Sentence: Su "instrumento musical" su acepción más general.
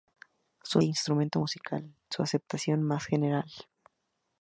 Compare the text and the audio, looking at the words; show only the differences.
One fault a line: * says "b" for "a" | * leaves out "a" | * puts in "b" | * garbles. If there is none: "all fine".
all fine